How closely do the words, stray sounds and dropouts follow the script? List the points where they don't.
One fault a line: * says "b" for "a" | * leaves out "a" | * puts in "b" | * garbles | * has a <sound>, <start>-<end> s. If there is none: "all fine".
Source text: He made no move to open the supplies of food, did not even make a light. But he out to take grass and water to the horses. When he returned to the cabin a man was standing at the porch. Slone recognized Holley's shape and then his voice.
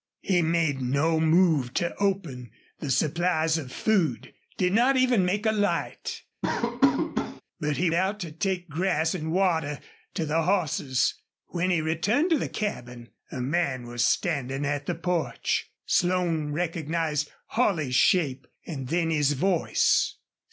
* has a laugh, 6.4-7.4 s